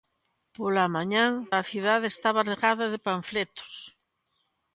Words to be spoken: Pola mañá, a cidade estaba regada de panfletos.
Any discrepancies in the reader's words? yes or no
no